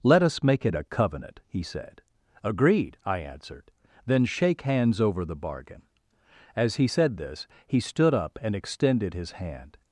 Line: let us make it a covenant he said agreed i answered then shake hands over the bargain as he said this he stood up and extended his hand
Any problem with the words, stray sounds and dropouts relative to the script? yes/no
no